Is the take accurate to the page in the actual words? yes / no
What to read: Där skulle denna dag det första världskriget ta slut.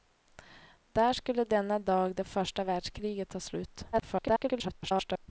no